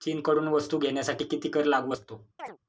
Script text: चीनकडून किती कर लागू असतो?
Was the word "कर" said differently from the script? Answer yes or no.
no